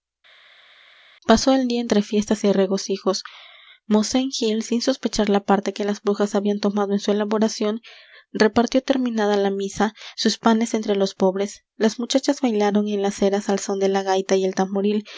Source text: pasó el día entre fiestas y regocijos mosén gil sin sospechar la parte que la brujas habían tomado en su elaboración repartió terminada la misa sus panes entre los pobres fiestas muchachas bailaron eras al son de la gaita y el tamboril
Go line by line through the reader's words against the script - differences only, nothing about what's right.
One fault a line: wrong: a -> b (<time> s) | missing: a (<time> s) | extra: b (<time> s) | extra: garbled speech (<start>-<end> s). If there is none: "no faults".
wrong: la -> las (5.8 s)
wrong: fiestas -> las (11.8 s)
extra: en las (12.9 s)